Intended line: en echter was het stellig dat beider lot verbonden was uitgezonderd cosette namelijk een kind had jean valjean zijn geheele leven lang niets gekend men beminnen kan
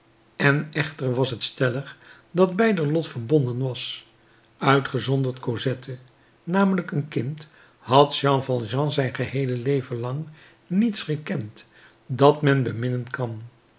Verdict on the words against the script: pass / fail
fail